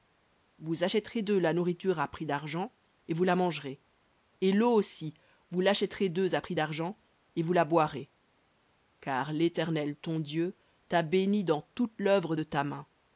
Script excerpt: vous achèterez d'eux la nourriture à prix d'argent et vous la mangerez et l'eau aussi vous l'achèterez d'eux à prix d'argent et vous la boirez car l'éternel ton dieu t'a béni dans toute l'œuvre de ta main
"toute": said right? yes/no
yes